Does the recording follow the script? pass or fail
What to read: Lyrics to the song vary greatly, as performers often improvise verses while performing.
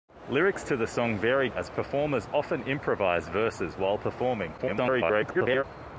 fail